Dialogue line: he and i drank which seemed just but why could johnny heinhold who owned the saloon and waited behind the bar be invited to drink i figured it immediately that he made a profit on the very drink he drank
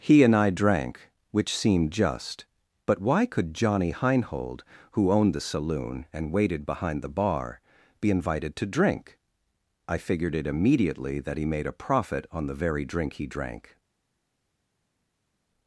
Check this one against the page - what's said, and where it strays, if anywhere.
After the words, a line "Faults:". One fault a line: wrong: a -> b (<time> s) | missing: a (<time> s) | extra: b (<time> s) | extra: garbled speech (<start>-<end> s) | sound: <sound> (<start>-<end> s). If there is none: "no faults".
he and i drank which seemed just but why could johnny heinhold who owned the saloon and waited behind the bar be invited to drink i figured it immediately that he made a profit on the very drink he drank
Faults:
no faults